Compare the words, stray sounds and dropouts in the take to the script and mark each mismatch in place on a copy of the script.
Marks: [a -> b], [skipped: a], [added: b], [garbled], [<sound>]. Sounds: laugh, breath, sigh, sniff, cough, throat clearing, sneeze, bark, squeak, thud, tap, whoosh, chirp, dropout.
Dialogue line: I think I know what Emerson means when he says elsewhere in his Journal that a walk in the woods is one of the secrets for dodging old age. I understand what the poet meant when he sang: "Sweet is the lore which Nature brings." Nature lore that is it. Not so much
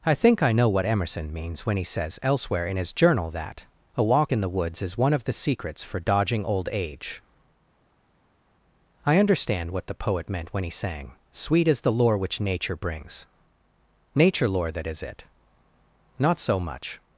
I think I know what Emerson means when he says elsewhere in his Journal that a walk in the woods is one of the secrets for dodging old age. I understand what the poet meant when he sang: "Sweet is the lore which Nature brings." Nature lore that is it. Not so much